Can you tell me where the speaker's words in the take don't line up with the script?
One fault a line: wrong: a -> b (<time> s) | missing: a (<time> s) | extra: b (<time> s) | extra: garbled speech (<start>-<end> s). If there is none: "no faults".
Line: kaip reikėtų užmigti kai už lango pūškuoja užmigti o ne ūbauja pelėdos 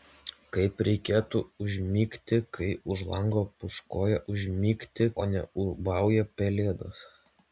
no faults